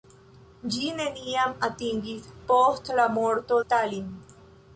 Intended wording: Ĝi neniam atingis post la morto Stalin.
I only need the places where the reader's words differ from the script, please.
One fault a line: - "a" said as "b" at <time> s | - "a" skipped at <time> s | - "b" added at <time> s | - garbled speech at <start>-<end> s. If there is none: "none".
none